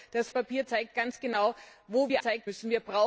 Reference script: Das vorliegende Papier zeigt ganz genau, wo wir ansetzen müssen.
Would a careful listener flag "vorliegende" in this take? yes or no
yes